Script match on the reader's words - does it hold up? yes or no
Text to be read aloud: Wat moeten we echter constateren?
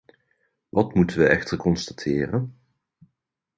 yes